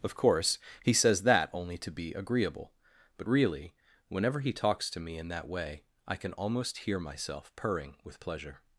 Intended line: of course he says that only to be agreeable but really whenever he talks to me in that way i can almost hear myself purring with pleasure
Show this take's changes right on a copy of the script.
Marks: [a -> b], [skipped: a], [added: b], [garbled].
of course he says that only to be agreeable but really whenever he talks to me in that way i can almost hear myself purring with pleasure